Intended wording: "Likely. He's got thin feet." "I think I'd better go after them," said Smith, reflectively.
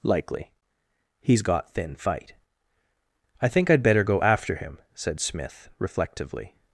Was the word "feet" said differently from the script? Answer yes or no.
yes